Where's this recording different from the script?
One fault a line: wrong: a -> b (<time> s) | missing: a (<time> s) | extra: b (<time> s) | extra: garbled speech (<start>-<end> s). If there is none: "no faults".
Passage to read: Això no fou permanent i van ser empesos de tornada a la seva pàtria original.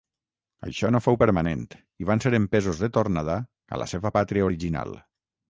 no faults